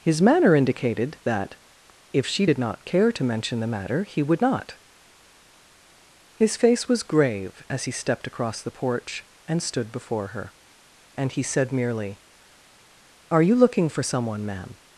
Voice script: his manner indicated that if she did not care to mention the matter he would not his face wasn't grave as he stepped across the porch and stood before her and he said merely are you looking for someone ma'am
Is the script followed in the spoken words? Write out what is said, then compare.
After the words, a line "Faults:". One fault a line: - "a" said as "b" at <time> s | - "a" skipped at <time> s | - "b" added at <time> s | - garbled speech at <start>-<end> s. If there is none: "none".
his manner indicated that if she did not care to mention the matter he would not his face was grave as he stepped across the porch and stood before her and he said merely are you looking for someone ma'am
Faults:
- "wasn't" said as "was" at 6.9 s